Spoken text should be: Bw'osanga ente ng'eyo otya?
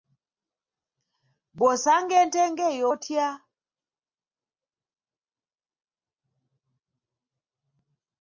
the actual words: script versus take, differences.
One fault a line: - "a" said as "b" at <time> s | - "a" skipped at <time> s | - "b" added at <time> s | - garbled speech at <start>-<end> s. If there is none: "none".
none